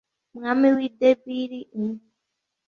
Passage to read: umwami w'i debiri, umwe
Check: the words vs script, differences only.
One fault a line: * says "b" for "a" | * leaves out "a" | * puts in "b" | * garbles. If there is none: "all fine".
all fine